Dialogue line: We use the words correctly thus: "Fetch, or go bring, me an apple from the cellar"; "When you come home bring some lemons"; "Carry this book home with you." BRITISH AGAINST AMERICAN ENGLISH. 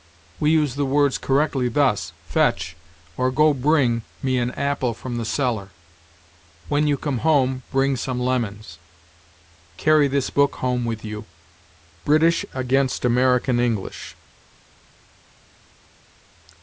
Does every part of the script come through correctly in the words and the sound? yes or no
yes